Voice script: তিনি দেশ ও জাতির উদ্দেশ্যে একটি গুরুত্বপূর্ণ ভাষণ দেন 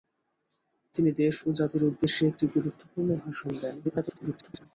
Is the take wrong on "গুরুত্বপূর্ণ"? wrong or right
right